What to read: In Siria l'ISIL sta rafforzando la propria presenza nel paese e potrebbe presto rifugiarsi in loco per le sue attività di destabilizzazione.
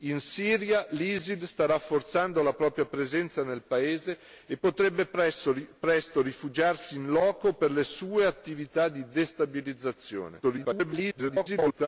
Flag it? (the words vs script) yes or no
yes